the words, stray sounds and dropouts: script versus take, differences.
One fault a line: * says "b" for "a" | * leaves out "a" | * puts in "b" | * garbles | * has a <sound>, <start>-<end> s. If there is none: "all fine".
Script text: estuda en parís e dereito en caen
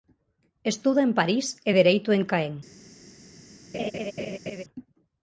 * has a laugh, 3.7-4.6 s